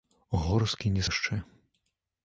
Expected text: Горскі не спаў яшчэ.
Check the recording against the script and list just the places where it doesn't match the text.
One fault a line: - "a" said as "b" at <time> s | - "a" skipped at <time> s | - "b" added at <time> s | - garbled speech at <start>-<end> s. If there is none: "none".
- "спаў" skipped at 1.0 s